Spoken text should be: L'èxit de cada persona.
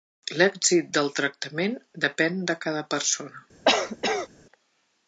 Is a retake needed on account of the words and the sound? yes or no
yes